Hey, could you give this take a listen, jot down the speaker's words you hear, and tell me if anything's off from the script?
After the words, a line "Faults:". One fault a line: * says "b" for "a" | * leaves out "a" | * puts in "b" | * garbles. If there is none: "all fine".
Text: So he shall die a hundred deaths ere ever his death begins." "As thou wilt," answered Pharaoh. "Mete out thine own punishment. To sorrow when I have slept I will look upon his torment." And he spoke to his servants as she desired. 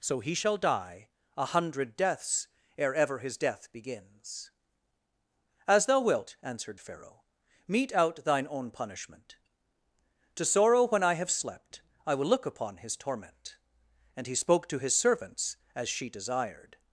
So he shall die a hundred deaths ere ever his death begins." "As thou wilt," answered Pharaoh. "Mete out thine own punishment. To sorrow when I have slept I will look upon his torment." And he spoke to his servants as she desired.
Faults:
all fine